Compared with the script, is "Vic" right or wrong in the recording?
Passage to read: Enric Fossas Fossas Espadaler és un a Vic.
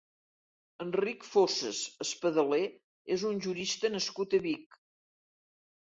right